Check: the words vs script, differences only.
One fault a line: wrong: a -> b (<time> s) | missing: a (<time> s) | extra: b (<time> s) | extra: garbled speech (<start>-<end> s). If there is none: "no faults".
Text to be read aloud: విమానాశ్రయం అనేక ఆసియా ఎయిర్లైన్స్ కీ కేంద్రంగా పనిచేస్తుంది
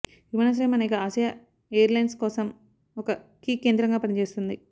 extra: కోసం ఒక (2.1 s)